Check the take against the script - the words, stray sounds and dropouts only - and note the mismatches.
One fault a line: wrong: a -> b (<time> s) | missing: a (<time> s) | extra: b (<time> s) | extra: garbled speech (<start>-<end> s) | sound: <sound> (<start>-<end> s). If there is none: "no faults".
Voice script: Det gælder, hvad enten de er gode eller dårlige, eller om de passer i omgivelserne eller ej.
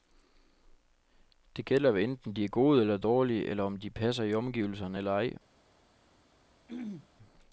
sound: throat clearing (6.7-7.1 s)